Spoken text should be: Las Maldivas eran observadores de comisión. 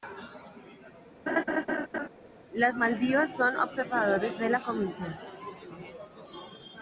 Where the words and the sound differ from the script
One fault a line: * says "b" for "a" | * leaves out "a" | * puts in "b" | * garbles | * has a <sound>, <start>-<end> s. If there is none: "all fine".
* has a laugh, 1.3-2.1 s
* says "son" for "eran"
* puts in "la"